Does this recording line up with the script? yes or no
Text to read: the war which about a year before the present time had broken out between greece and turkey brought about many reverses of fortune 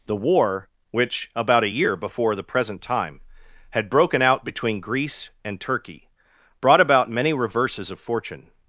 yes